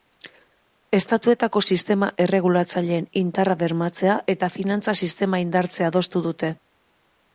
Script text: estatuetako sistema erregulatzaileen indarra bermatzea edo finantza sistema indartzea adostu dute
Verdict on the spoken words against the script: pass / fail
fail